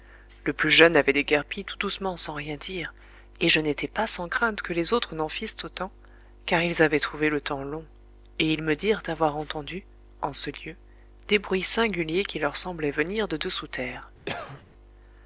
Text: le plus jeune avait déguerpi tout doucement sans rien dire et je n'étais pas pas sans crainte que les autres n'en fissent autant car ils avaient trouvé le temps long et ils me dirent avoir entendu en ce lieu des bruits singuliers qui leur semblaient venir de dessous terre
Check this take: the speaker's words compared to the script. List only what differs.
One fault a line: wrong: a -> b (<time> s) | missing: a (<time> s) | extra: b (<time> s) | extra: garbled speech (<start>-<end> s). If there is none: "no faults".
missing: pas (4.1 s)